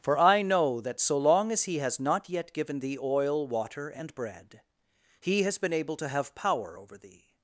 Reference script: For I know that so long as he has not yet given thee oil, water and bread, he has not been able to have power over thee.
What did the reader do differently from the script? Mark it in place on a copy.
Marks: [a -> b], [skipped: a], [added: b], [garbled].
For I know that so long as he has not yet given thee oil, water and bread, he has [skipped: not] been able to have power over thee.